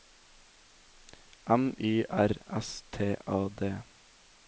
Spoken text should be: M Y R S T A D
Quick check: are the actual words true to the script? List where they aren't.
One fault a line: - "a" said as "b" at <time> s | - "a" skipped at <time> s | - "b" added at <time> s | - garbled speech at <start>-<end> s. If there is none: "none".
none